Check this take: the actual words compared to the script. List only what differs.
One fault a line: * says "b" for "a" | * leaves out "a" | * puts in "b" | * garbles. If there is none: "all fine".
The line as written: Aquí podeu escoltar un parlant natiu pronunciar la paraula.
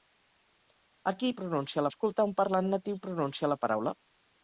* says "pronunciar" for "podeu"